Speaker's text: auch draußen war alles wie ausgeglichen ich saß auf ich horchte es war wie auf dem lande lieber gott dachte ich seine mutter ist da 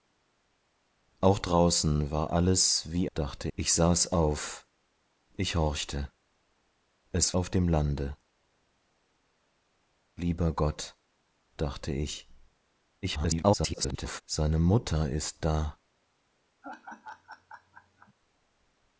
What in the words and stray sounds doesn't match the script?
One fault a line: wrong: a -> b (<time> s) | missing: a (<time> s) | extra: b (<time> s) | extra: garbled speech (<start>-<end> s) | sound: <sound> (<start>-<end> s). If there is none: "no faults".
wrong: ausgeglichen -> dachte (3.1 s)
missing: war wie (7.3 s)
extra: garbled speech (13.0-14.2 s)
sound: laugh (16.6-18.1 s)